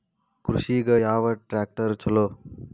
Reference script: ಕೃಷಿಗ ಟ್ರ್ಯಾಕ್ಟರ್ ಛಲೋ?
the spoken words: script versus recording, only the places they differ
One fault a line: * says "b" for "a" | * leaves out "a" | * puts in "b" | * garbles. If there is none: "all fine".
* puts in "ಯಾವ"